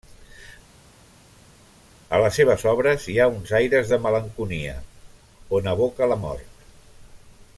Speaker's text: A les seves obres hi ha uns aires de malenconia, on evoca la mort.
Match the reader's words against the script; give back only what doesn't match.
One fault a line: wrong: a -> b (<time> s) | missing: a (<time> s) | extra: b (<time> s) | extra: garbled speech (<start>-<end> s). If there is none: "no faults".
no faults